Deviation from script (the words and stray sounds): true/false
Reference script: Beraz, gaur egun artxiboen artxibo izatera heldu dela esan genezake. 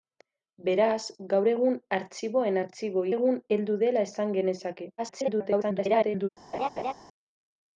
true